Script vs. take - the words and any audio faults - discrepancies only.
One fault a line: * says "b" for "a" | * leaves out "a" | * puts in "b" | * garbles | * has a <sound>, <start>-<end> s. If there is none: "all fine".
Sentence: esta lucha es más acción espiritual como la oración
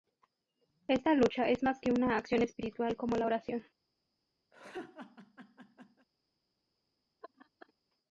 * puts in "que una"
* has a laugh, 4.5-6.1 s
* has a laugh, 7.2-7.7 s